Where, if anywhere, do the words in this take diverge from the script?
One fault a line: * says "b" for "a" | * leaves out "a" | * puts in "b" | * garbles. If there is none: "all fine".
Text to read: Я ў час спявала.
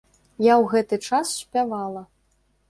* puts in "гэты"